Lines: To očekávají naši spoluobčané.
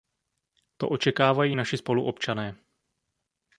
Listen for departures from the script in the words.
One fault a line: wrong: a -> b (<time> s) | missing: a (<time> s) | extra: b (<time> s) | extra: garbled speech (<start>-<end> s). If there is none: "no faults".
no faults